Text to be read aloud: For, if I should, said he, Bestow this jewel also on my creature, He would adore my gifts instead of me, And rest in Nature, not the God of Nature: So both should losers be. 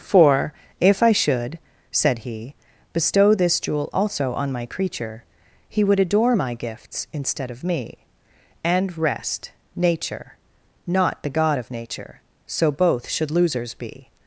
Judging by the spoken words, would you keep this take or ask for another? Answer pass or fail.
fail